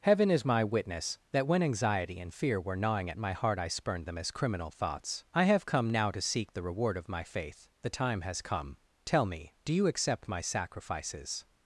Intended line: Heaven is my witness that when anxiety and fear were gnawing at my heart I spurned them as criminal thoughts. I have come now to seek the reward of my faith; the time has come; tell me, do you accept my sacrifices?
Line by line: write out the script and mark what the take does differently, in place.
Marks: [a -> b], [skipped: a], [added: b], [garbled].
Heaven is my witness that when anxiety and fear were gnawing at my heart I spurned them as criminal thoughts. I have come now to seek the reward of my faith; the time has come; tell me, do you accept my sacrifices?